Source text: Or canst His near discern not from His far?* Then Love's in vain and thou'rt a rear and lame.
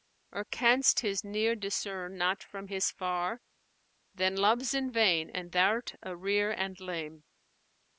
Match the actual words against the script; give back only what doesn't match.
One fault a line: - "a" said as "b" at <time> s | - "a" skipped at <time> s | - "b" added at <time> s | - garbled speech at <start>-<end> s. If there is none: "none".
none